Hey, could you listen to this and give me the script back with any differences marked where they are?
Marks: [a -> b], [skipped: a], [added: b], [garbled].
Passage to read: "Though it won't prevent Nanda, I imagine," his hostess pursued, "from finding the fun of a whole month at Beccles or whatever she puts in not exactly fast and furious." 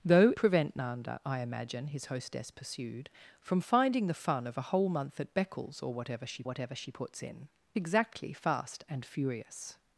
"Though [skipped: it won't] prevent Nanda, I imagine," his hostess pursued, "from finding the fun of a whole month at Beccles or whatever she [added: whatever she] puts in [skipped: not] exactly fast and furious."